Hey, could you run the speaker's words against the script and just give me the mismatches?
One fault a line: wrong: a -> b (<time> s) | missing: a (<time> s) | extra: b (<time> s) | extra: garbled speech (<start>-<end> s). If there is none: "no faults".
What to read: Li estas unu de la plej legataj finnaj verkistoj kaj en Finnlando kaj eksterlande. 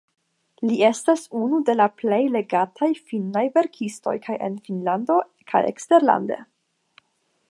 no faults